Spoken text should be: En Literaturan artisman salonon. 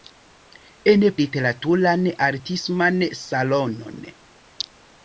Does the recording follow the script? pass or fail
pass